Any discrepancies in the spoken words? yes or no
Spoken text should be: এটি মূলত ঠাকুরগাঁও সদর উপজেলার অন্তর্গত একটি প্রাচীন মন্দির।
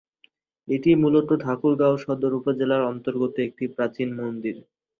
no